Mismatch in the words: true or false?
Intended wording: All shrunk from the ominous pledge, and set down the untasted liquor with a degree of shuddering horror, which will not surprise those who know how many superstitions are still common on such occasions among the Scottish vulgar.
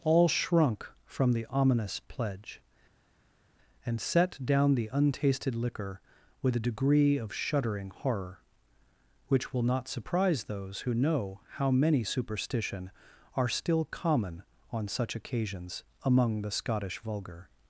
true